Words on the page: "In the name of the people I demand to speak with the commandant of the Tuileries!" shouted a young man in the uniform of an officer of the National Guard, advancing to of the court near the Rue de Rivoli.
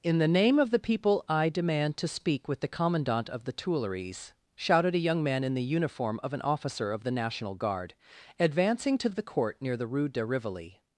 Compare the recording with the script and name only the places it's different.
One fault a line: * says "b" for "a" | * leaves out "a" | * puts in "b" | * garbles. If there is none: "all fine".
all fine